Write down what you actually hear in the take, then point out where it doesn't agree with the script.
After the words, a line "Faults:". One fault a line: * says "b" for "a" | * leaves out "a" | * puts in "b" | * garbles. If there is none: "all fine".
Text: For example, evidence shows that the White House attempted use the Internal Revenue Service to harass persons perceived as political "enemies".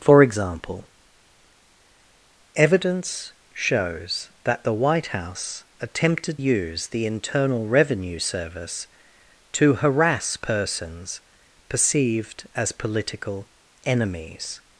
For example, evidence shows that the White House attempted use the Internal Revenue Service to harass persons perceived as political "enemies".
Faults:
all fine